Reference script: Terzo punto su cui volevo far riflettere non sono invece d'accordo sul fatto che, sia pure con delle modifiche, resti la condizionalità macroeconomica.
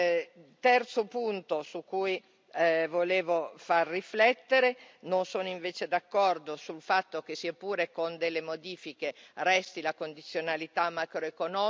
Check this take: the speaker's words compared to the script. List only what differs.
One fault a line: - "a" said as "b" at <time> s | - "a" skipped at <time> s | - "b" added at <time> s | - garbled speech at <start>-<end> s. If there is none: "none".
none